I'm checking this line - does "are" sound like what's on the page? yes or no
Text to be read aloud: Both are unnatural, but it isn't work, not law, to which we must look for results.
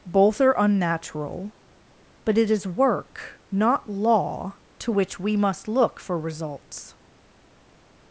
yes